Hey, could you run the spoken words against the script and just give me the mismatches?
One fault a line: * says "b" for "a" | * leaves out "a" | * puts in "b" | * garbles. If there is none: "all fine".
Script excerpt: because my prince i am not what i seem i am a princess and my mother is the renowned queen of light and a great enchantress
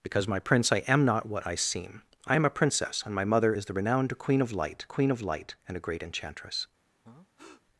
* puts in "queen of light"